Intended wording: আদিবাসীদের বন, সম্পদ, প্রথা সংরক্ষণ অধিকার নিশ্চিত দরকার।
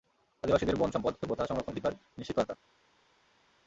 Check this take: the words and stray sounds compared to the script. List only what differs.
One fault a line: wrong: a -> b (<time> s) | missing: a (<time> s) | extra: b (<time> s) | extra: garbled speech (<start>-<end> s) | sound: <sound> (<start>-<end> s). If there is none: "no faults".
no faults